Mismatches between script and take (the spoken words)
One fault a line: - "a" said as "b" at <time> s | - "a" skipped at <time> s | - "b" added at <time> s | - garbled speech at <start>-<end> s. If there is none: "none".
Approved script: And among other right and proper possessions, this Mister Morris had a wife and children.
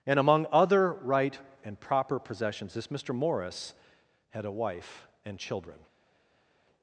none